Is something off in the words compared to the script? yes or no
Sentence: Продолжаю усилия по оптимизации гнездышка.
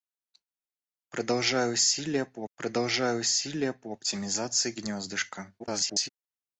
yes